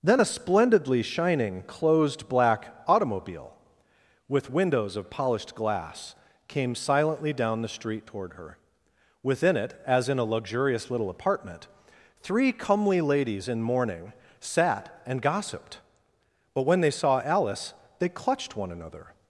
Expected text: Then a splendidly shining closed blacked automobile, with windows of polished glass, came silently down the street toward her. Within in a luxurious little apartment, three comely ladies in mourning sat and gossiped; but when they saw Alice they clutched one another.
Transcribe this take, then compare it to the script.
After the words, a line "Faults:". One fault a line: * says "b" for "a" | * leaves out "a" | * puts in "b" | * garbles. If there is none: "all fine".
Then a splendidly shining closed black automobile, with windows of polished glass, came silently down the street toward her. Within it, as in a luxurious little apartment, three comely ladies in mourning sat and gossiped; but when they saw Alice they clutched one another.
Faults:
* says "black" for "blacked"
* puts in "it as"